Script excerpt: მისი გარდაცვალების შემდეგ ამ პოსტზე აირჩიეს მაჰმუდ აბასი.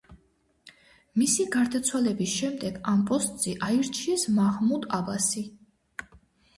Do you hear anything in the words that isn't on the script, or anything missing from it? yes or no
no